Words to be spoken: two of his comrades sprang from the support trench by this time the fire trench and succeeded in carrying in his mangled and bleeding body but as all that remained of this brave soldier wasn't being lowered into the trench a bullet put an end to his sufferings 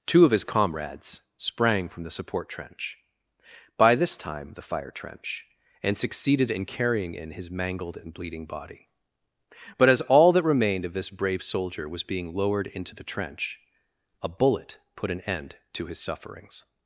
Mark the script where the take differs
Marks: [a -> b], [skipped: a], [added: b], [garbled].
two of his comrades sprang from the support trench by this time the fire trench and succeeded in carrying in his mangled and bleeding body but as all that remained of this brave soldier [wasn't -> was] being lowered into the trench a bullet put an end to his sufferings